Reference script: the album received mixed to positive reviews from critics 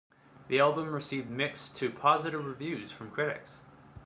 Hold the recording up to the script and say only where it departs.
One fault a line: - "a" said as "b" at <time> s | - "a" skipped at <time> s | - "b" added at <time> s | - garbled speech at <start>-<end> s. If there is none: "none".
none